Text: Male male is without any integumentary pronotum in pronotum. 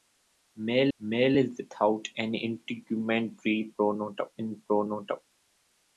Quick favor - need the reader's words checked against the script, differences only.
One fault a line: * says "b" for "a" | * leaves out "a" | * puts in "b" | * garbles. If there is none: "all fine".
all fine